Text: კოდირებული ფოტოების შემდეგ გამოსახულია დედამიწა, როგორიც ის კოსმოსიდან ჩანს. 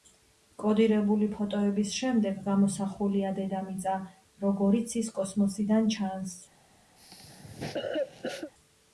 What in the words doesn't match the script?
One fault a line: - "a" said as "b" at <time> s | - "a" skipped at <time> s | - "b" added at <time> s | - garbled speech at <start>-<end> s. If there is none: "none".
none